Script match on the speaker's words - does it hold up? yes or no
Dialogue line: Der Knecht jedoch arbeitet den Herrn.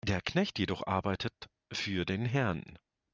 no